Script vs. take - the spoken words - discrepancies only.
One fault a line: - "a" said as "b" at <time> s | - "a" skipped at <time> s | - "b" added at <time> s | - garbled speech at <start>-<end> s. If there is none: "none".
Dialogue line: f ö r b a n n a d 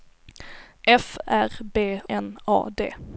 - "ö" skipped at 1.2 s
- "a n" skipped at 1.8 s